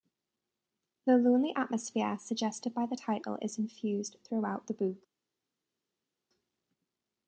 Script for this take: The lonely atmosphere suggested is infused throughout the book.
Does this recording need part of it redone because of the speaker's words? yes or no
yes